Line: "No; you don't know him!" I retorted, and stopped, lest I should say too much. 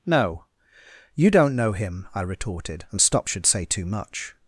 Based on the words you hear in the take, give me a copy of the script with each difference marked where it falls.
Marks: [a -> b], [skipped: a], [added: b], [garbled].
"No; you don't know him!" I retorted, and stopped, [skipped: lest I] should say too much.